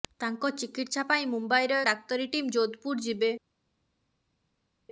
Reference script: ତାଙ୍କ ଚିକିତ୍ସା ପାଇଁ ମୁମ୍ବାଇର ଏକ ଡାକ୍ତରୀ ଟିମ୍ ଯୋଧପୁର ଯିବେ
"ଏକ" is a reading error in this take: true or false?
true